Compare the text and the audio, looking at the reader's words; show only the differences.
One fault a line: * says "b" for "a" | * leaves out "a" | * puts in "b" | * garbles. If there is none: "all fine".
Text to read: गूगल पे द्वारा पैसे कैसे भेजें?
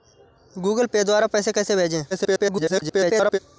* garbles